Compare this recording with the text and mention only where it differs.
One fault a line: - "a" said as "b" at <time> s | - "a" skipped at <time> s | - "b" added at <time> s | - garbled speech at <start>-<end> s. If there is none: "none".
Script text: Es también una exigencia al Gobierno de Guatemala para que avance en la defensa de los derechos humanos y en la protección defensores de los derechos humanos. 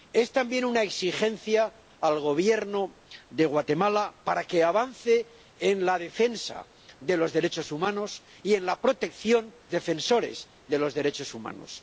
none